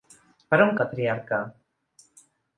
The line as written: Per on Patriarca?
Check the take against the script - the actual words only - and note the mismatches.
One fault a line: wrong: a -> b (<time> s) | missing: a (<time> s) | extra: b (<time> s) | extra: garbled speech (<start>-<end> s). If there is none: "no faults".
no faults